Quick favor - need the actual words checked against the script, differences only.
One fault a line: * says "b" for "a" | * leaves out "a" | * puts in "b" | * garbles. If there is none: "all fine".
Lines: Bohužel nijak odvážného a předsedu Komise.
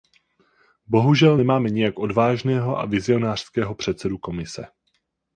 * puts in "nemáme"
* puts in "vizionářského"